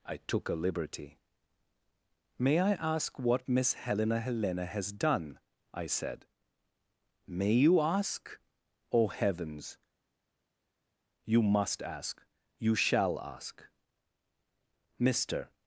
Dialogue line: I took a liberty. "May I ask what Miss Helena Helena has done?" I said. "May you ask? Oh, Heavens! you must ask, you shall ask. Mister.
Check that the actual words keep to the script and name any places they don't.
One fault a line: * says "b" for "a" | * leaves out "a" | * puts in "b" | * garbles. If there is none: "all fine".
all fine